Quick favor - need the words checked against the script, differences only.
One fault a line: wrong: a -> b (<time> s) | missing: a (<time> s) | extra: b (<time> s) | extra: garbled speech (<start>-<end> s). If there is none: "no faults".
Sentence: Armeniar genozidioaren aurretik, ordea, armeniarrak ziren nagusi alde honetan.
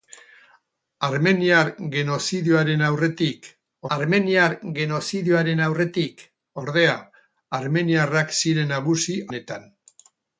extra: armeniar genozidioaren aurretik (3.9 s)
missing: alde (9.2 s)